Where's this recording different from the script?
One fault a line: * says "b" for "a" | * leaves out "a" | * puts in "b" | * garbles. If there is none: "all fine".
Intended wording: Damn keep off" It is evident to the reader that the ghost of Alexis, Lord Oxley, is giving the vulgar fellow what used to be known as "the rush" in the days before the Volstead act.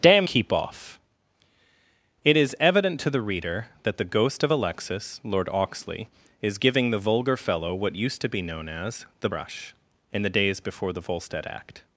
all fine